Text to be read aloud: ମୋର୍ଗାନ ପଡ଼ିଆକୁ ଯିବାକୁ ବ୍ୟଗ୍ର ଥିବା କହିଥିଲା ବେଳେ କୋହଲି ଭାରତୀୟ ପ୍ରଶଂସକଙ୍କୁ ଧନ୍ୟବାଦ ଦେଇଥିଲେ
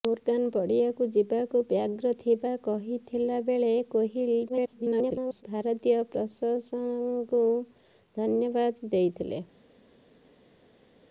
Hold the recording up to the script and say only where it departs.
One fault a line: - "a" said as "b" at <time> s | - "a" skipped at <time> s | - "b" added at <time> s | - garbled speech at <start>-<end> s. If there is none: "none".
- garbled speech at 4.5-5.4 s